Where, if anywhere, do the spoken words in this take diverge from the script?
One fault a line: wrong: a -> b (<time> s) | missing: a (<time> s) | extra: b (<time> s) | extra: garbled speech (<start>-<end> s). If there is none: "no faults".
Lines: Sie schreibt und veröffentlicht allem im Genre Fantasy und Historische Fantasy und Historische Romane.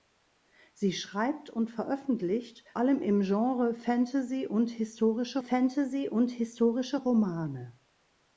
no faults